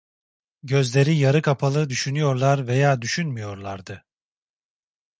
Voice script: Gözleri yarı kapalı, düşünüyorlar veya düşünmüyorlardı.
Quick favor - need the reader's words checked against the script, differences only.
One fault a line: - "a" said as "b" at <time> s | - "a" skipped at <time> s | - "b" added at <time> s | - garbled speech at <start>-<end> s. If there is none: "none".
none